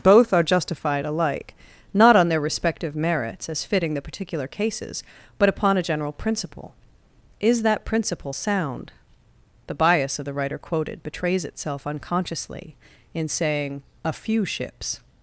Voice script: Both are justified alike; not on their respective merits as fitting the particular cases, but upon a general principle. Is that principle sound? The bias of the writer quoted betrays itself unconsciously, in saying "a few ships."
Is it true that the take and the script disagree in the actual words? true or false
false